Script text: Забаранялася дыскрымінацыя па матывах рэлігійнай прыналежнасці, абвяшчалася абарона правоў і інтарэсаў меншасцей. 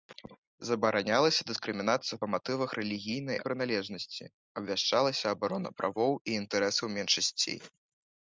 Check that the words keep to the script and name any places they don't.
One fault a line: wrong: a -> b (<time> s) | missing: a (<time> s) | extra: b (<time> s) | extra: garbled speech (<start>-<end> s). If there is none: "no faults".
no faults